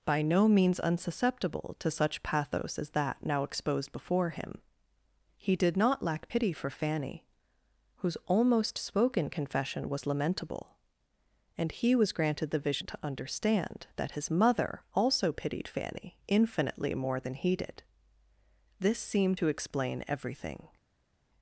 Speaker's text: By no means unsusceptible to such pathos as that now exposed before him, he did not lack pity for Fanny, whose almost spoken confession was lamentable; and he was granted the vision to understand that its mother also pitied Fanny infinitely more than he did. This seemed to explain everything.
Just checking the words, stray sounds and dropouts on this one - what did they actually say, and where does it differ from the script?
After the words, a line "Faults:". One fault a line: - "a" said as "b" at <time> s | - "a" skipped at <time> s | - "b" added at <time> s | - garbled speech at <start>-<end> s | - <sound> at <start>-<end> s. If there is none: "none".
By no means unsusceptible to such pathos as that now exposed before him, he did not lack pity for Fanny, whose almost spoken confession was lamentable; and he was granted the vision to understand that his mother also pitied Fanny infinitely more than he did. This seemed to explain everything.
Faults:
- "its" said as "his" at 14.1 s